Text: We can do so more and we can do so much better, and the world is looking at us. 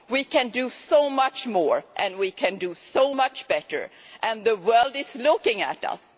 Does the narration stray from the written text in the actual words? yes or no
yes